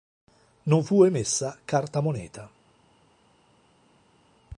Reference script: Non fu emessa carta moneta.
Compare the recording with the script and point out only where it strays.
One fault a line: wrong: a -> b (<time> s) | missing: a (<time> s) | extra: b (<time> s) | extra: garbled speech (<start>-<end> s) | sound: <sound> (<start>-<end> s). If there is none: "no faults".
no faults